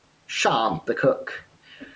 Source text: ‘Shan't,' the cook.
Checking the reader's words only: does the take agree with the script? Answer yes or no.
yes